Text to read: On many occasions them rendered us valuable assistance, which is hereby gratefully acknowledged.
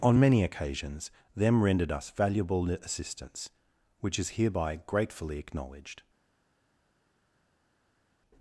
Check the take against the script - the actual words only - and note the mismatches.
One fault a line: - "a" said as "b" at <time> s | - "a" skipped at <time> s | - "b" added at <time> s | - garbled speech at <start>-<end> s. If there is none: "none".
none